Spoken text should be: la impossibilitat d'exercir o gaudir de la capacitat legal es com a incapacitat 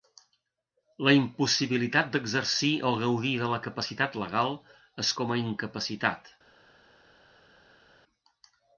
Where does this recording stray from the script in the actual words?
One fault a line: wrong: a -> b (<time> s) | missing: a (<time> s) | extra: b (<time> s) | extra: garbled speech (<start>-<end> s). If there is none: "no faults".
no faults